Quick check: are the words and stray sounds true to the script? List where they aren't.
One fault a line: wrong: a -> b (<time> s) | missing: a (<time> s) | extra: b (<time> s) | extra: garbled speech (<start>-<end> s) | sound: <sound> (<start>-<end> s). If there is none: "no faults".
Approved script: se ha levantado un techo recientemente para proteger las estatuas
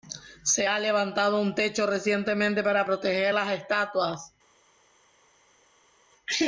no faults